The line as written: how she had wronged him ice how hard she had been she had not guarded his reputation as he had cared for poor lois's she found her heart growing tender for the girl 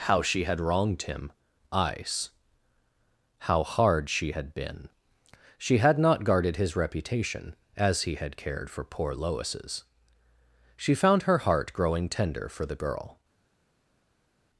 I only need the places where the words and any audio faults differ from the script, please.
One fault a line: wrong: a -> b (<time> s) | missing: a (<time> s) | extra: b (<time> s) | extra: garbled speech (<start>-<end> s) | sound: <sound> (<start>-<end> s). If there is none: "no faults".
no faults